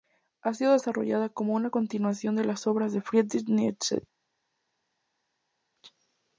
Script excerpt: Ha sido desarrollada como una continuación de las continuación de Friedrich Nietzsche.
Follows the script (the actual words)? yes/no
no